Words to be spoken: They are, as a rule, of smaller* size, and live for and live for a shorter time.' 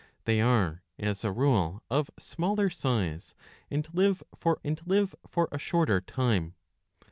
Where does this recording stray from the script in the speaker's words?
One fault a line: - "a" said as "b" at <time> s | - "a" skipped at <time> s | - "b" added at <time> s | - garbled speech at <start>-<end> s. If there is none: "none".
none